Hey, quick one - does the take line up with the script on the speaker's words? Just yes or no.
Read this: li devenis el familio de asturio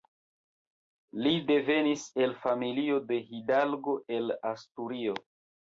no